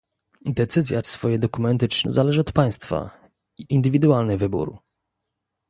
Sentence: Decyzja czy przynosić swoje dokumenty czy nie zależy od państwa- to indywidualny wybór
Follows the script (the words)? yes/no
no